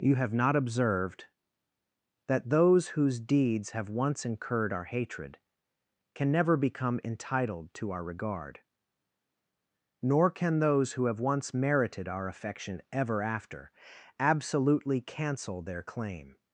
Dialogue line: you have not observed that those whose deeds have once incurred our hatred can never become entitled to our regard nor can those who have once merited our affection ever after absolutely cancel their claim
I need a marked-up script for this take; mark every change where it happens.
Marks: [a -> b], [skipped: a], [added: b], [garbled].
you have not observed that those whose deeds have once incurred our hatred can never become entitled to our regard nor can those who have once merited our affection ever after absolutely cancel their claim